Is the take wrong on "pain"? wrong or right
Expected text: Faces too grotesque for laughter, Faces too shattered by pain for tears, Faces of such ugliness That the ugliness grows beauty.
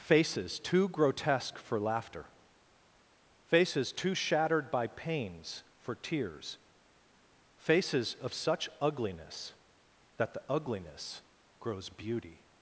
wrong